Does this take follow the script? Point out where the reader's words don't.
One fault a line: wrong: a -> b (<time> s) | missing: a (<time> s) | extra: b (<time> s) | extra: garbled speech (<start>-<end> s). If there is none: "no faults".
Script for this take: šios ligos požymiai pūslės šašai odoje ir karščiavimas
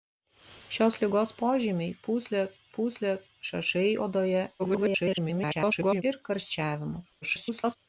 extra: pūslės (2.8 s)
extra: garbled speech (4.6-6.0 s)
extra: garbled speech (7.2-7.8 s)